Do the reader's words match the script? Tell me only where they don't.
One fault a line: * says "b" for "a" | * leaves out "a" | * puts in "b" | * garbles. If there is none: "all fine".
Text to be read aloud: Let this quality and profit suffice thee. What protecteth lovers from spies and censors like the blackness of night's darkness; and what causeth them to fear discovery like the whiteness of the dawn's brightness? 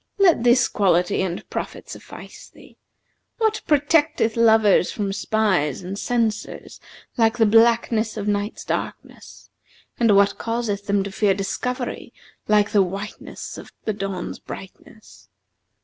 all fine